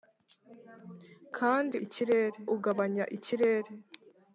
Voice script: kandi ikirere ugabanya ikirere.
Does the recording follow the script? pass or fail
pass